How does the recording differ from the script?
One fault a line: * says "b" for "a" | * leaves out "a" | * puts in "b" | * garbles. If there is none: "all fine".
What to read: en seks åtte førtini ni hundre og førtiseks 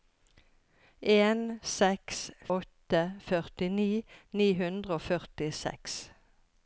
all fine